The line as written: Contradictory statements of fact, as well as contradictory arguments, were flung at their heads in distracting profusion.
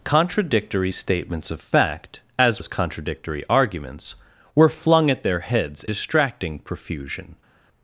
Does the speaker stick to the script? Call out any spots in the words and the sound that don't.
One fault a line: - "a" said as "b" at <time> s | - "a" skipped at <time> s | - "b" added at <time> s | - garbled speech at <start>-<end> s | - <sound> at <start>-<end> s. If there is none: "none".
- "well" skipped at 2.6 s
- "in" skipped at 5.9 s